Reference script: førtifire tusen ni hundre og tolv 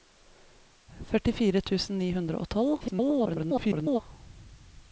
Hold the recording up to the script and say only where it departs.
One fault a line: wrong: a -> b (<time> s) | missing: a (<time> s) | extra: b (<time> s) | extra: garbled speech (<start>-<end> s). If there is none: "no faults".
extra: garbled speech (2.8-4.0 s)